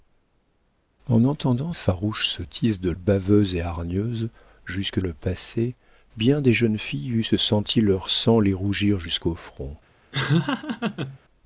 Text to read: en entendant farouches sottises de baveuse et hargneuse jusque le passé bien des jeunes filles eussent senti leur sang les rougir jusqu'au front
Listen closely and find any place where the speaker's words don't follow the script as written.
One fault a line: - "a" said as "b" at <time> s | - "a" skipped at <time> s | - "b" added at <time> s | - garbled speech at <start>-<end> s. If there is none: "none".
none